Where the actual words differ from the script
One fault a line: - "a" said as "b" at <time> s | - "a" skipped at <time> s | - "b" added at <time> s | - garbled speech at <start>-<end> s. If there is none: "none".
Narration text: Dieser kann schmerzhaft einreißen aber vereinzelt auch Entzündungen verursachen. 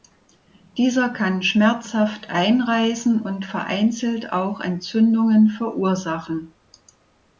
- "aber" said as "und" at 3.2 s